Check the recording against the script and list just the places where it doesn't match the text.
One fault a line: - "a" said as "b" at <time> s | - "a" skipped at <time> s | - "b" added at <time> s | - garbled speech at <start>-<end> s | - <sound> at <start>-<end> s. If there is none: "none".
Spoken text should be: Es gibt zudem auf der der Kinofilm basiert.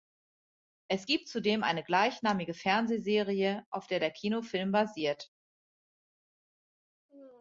- "eine gleichnamige Fernsehserie" added at 1.6 s